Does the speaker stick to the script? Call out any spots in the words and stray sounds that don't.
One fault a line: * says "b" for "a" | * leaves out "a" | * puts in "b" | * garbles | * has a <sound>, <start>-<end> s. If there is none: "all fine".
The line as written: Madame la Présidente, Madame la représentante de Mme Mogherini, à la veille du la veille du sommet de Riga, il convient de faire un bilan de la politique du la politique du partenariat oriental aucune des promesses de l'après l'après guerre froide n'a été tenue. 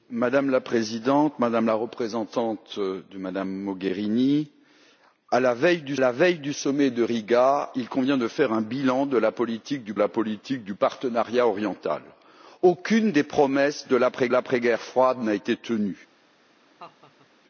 * has a laugh, 16.8-17.3 s